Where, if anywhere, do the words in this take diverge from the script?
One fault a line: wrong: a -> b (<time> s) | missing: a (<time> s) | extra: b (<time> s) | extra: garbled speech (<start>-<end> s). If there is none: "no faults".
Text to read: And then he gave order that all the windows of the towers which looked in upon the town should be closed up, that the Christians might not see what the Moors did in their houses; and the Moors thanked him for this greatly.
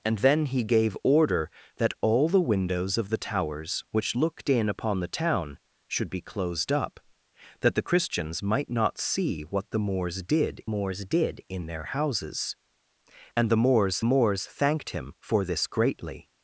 extra: Moors did (10.6 s)
extra: Moors (14.0 s)